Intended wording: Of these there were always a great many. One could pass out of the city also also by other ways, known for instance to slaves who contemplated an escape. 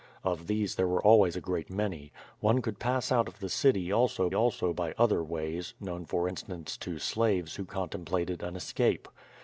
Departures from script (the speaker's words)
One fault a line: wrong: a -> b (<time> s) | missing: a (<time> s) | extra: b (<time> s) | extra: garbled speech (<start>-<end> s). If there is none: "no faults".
no faults